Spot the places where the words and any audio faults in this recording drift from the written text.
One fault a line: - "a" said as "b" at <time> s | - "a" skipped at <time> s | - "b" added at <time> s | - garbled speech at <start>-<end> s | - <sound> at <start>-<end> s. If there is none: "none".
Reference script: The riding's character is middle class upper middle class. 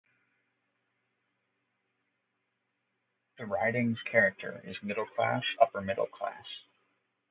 none